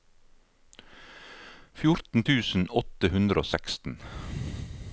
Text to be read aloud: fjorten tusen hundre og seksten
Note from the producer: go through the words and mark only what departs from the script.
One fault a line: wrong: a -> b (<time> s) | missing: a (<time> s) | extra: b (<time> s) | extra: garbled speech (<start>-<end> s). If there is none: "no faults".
extra: åtte (2.8 s)